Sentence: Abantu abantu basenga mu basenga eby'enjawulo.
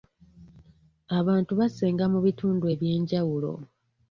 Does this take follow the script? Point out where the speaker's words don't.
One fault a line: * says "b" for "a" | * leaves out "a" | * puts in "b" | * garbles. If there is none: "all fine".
* leaves out "abantu"
* says "bitundu" for "basenga"